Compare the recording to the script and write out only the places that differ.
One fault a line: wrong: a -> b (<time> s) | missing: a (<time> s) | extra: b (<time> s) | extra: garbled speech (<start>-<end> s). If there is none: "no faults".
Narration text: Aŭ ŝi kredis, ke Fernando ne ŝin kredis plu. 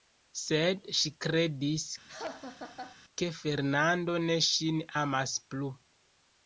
wrong: Aŭ -> Sed (0.4 s)
wrong: kredis -> amas (5.0 s)